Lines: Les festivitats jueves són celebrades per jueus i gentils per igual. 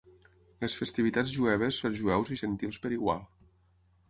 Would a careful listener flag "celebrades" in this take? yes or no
yes